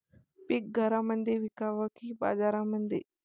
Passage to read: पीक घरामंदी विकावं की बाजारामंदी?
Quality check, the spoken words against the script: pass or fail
pass